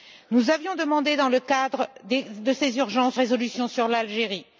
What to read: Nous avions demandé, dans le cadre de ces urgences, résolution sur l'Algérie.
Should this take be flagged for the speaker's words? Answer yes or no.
no